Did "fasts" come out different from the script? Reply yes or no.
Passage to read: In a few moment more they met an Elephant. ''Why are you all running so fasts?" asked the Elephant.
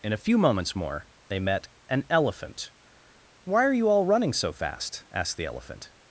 yes